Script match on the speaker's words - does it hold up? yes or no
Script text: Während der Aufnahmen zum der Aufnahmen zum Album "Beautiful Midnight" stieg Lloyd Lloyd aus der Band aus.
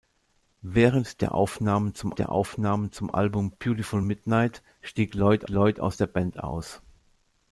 yes